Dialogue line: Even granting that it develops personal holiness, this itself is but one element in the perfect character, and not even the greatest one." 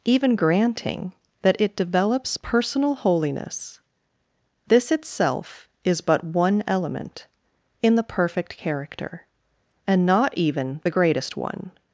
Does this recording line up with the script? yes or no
yes